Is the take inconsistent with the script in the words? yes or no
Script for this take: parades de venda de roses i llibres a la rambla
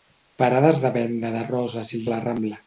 yes